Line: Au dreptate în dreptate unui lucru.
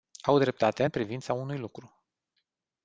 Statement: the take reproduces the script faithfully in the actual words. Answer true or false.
false